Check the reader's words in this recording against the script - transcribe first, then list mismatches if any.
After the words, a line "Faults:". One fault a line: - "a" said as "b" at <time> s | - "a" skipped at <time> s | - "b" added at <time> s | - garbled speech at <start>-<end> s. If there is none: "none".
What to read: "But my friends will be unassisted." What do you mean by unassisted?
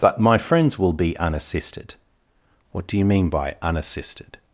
"But my friends will be unassisted." What do you mean by unassisted?
Faults:
none